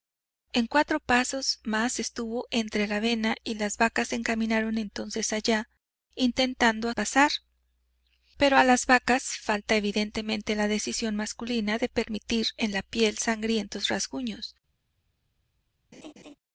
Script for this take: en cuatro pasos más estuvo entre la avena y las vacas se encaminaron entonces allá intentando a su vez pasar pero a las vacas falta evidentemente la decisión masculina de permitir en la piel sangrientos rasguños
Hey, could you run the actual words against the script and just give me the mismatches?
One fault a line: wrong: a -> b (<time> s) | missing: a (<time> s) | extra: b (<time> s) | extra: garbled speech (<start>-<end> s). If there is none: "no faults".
missing: su vez (7.0 s)